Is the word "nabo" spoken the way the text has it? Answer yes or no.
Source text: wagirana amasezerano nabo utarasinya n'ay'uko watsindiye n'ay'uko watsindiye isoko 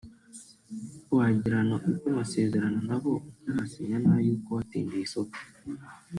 yes